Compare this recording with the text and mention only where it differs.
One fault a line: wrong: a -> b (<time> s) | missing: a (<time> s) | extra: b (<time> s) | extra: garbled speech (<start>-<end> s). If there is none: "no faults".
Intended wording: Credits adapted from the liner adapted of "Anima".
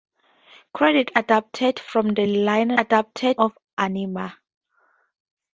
no faults